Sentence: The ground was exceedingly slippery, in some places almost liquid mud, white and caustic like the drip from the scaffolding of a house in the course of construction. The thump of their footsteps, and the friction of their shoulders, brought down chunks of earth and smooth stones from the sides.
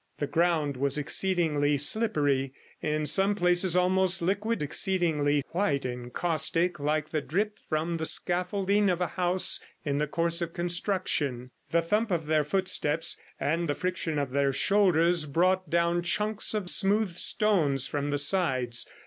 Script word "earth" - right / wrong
wrong